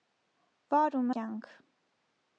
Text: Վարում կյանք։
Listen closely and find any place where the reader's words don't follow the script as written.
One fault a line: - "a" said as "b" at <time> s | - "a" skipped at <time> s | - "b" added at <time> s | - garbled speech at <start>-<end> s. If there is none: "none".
none